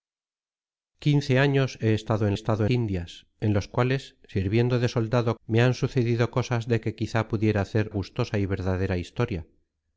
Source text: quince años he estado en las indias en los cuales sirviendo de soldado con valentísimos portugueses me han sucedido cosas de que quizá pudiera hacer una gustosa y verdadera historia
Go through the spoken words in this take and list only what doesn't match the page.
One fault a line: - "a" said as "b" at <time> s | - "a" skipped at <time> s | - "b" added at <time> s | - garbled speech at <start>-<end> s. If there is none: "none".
- "las" said as "estado" at 2.3 s
- "con valentísimos portugueses" skipped at 5.4 s
- "una" skipped at 7.9 s